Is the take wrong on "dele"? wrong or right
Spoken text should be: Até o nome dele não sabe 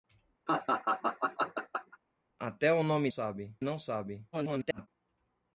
wrong